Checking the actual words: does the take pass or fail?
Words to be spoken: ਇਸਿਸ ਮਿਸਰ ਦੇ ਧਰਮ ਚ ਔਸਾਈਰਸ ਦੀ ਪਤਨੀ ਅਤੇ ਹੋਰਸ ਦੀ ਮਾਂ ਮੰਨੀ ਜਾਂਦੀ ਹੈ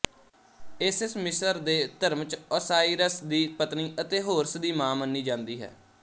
pass